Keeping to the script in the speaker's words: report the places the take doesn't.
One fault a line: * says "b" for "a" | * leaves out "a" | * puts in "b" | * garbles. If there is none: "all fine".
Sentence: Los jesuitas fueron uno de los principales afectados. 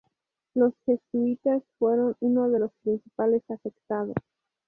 all fine